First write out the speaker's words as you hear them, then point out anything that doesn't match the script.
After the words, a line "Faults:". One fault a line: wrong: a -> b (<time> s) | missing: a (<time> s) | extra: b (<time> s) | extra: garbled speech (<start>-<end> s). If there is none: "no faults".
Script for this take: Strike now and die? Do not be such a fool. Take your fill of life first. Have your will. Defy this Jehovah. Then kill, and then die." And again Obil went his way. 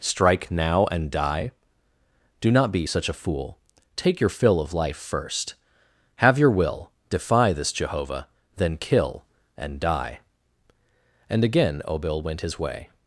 Strike now and die? Do not be such a fool. Take your fill of life first. Have your will. Defy this Jehovah. Then kill, and die." And again Obil went his way.
Faults:
missing: then (9.8 s)